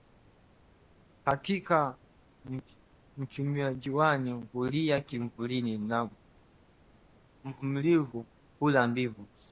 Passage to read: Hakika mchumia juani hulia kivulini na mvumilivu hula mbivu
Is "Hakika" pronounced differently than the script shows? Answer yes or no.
no